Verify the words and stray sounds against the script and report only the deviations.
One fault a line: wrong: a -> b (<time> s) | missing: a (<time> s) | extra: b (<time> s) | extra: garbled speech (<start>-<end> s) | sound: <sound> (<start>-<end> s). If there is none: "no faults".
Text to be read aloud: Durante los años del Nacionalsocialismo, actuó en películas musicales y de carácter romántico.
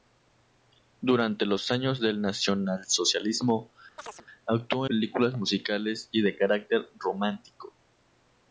sound: chirp (4.0-4.3 s)
missing: en (4.9 s)